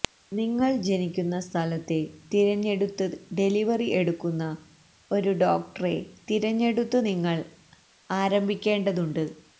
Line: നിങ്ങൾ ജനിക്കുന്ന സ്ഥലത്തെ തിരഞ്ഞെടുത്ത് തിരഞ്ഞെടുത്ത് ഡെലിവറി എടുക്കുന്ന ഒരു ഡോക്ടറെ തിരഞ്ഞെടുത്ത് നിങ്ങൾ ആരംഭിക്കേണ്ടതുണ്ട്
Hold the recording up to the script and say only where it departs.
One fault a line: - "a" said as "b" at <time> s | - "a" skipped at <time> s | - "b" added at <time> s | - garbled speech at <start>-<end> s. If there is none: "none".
- "തിരഞ്ഞെടുത്ത്" skipped at 3.0 s